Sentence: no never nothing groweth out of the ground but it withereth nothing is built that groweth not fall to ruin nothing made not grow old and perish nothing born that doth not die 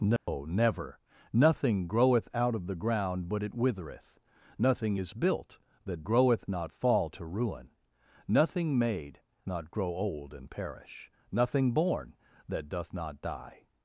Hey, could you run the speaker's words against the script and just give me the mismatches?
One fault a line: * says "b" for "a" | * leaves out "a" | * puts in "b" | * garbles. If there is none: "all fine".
all fine